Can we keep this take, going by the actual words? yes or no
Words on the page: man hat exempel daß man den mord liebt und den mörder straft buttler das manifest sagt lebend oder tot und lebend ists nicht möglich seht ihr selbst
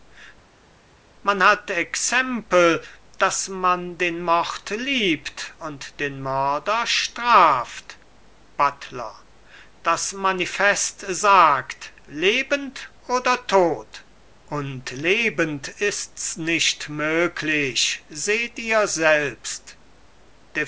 yes